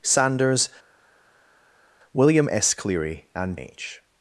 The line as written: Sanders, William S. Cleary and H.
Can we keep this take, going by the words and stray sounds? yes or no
yes